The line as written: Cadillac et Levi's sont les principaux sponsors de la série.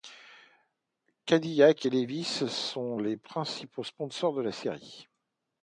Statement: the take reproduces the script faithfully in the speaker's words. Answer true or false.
true